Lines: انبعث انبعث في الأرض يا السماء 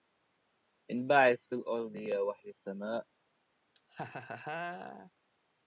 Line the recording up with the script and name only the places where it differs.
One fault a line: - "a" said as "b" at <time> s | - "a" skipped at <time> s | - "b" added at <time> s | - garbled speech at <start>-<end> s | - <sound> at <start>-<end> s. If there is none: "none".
- "انبعث" skipped at 1.5 s
- "وحي" added at 2.2 s
- laugh at 3.7-5.1 s